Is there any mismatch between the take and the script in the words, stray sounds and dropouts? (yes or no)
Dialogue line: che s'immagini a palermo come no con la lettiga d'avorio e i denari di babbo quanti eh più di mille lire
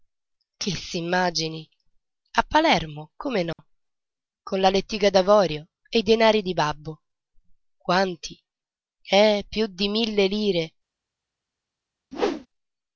yes